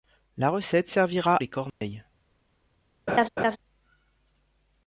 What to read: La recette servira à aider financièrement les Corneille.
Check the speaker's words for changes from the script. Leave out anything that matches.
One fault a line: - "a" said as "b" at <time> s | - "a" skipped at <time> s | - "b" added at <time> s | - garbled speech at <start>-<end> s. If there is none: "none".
- "à aider financièrement" skipped at 1.4 s